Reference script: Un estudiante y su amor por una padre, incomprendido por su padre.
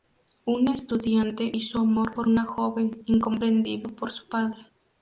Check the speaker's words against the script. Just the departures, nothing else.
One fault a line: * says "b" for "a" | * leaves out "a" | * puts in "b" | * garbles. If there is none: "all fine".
* says "joven" for "padre"